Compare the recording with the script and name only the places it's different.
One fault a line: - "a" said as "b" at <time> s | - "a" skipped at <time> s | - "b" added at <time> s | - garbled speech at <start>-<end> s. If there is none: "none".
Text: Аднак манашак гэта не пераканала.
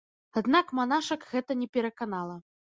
none